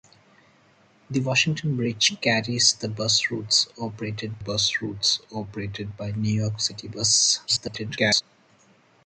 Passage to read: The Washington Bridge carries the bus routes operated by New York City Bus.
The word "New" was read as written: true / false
true